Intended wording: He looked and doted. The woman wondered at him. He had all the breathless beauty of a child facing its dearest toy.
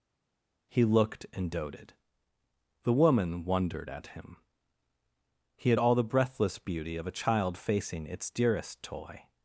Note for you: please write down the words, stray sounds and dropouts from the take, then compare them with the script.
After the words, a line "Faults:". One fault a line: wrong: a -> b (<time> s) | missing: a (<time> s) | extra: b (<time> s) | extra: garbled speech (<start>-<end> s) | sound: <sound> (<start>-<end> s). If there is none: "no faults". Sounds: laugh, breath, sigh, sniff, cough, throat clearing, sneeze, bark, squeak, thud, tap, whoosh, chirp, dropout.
He looked and doted. The woman wondered at him. He had all the breathless beauty of a child facing its dearest toy.
Faults:
no faults